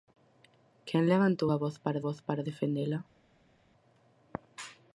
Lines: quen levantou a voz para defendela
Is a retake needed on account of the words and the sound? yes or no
yes